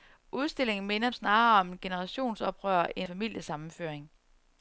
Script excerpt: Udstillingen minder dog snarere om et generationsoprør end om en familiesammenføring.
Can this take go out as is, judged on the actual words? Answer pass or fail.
fail